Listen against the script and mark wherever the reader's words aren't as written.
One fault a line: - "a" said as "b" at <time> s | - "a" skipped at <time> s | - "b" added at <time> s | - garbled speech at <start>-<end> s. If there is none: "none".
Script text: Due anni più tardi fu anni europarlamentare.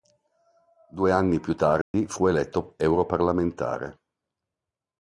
- "anni" said as "eletto" at 2.3 s